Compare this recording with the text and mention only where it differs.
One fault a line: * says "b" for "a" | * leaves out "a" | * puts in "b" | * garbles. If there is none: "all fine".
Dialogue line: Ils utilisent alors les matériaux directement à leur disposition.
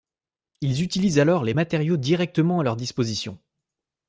all fine